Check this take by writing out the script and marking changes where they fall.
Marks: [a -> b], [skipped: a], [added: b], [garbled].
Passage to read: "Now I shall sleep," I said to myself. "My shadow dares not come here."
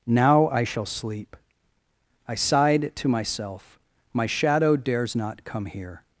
"Now I shall sleep," I [said -> sighed] to myself. "My shadow dares not come here."